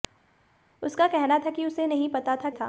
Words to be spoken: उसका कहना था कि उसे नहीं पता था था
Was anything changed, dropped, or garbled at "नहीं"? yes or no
no